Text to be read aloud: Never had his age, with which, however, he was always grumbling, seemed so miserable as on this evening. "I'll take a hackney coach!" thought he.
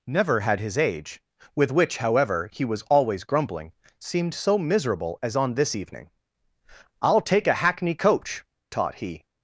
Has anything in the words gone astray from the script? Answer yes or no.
yes